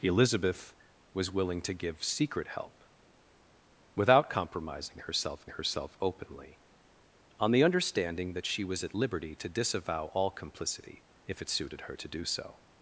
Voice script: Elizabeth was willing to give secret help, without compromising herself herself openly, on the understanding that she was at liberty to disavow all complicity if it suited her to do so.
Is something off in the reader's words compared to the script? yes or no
no